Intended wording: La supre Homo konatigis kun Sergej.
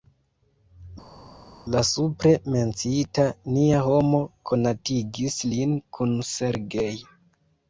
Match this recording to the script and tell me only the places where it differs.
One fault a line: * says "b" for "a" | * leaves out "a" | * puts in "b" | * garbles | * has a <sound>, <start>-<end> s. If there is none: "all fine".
* puts in "menciita Nia"
* puts in "lin"